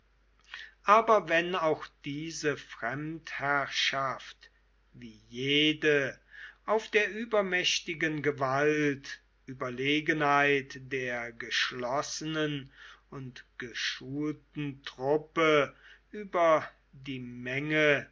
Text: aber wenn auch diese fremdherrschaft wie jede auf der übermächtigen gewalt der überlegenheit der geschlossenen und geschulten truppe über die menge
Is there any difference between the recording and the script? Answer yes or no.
yes